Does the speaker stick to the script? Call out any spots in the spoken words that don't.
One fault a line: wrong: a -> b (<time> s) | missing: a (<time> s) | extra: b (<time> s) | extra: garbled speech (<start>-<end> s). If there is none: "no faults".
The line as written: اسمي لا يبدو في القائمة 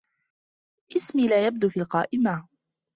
no faults